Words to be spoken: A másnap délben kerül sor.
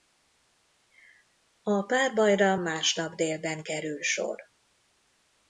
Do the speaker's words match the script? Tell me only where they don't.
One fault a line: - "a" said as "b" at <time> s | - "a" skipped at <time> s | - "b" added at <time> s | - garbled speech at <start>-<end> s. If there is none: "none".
- "párbajra" added at 1.8 s